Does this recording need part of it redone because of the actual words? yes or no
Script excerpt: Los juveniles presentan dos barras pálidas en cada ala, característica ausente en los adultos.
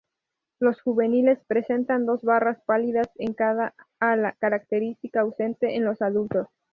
no